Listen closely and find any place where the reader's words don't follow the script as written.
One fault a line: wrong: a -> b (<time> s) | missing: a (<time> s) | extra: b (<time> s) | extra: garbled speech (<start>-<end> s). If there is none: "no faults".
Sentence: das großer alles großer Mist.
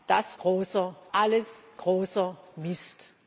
no faults